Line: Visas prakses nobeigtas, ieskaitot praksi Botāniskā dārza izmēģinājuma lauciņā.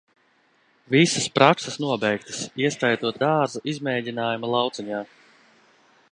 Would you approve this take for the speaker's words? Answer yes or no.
no